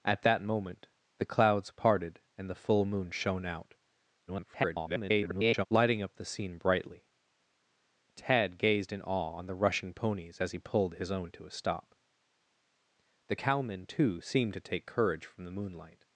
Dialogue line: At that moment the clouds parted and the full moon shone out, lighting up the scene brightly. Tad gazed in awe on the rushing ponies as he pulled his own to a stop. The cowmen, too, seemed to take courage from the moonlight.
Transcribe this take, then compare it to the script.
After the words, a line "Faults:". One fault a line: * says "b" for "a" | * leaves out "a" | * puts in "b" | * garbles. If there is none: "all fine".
At that moment the clouds parted and the full moon shone out, [garbled] lighting up the scene brightly. Tad gazed in awe on the rushing ponies as he pulled his own to a stop. The cowmen, too, seemed to take courage from the moonlight.
Faults:
* garbles